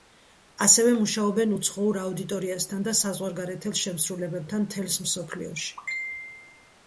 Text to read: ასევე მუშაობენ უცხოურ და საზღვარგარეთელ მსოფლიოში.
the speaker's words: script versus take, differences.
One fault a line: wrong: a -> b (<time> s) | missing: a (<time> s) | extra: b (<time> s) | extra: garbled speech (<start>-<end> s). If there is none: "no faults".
extra: აუდიტორიასთან (2.0 s)
extra: შემსრულებლებთან მთელს (3.8 s)